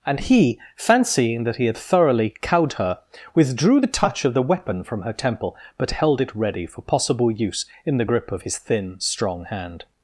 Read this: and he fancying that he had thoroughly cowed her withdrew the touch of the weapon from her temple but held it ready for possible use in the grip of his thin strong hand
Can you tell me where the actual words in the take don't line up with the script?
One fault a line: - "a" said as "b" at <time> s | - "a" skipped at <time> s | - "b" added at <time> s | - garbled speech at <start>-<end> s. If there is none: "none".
none